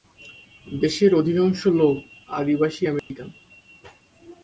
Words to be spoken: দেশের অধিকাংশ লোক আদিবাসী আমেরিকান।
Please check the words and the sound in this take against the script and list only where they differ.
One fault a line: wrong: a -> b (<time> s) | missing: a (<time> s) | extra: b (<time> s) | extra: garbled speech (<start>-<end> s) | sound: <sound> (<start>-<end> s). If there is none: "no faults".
sound: dropout (3.0-3.1 s)